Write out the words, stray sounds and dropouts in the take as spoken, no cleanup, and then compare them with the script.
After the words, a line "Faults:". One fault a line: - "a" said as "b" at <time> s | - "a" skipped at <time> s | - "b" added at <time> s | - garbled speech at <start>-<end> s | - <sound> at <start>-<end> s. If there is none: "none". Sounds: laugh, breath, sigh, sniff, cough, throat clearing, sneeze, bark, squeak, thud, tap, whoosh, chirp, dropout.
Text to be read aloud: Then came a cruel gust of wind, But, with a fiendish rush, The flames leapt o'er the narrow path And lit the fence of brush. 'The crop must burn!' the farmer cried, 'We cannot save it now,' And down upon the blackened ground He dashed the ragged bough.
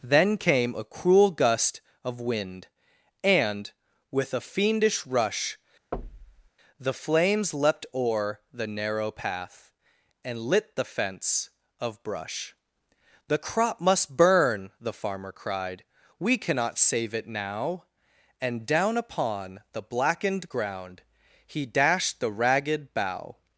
Then came a cruel gust of wind, And, with a fiendish rush, The flames leapt o'er the narrow path And lit the fence of brush. 'The crop must burn!' the farmer cried, 'We cannot save it now,' And down upon the blackened ground He dashed the ragged bough.
Faults:
- "But" said as "And" at 3.2 s
- thud at 5.9-6.5 s